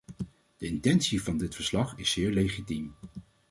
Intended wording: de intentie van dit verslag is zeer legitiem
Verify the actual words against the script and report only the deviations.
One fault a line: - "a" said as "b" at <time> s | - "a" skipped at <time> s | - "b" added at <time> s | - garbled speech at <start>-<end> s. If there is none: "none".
none